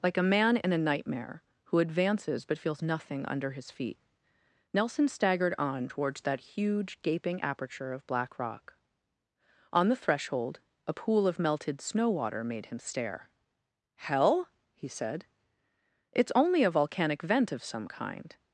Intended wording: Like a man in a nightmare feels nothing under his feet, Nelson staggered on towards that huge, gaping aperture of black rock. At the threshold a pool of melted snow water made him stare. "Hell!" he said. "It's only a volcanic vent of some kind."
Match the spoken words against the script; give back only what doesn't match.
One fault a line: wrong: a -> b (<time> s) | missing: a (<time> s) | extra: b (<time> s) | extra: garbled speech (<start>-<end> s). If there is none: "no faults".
extra: who advances but (1.6 s)
wrong: At -> On (9.7 s)